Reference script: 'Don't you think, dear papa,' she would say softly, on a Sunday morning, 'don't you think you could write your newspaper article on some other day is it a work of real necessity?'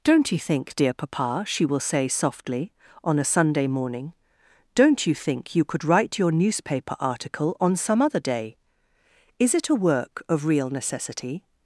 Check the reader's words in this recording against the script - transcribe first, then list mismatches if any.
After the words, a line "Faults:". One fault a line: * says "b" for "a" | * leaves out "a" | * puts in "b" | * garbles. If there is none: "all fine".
'Don't you think, dear papa,' she will say softly, on a Sunday morning, 'don't you think you could write your newspaper article on some other day is it a work of real necessity?'
Faults:
* says "will" for "would"